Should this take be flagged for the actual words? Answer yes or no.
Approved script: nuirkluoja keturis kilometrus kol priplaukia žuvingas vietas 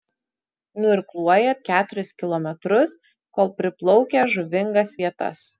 no